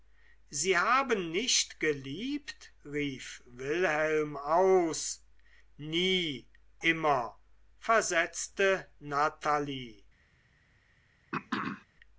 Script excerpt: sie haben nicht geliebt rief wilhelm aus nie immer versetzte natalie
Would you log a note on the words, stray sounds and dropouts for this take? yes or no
yes